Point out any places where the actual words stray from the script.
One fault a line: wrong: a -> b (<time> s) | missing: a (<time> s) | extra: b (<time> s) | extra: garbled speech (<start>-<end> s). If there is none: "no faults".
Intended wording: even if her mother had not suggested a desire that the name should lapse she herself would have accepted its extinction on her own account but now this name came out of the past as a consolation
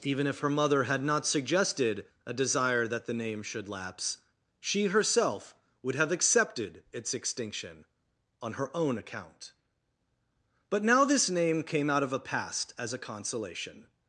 wrong: the -> a (12.1 s)